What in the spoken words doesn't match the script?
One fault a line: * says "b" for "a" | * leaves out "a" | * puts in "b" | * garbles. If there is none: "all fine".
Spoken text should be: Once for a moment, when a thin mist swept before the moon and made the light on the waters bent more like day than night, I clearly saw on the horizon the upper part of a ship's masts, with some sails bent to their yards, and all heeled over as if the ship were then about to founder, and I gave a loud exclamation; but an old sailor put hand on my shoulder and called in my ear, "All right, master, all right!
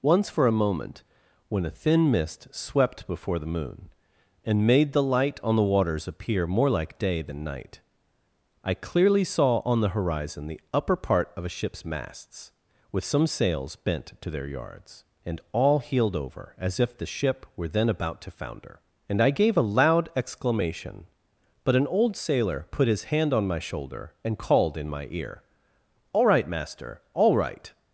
* says "appear" for "bent"
* puts in "his"